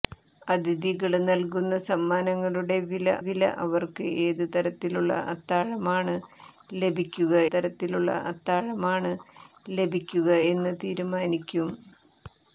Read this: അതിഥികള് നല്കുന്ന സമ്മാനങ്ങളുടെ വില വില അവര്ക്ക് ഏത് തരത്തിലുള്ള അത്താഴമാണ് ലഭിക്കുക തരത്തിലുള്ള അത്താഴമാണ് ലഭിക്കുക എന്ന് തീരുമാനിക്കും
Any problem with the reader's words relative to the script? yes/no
no